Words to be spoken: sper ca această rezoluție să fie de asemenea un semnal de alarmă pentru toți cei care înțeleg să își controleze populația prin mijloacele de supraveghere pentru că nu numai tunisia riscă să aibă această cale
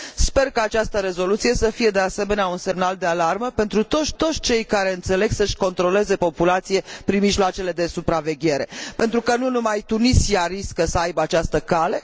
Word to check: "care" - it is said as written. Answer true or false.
true